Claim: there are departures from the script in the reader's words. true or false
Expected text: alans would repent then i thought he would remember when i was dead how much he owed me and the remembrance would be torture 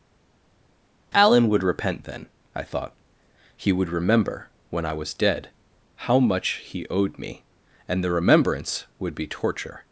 true